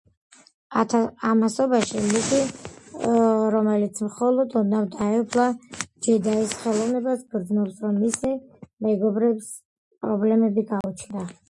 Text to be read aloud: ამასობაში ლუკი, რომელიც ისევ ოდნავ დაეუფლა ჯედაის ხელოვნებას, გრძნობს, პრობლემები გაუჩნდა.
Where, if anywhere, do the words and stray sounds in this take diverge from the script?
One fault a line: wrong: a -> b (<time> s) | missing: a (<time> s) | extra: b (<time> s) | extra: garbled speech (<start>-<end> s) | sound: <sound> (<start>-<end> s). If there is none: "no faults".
wrong: ისევ -> მხოლოდ (4.1 s)
extra: რომ მისი მეგობრებს (7.9 s)
sound: dropout (10.8-10.8 s)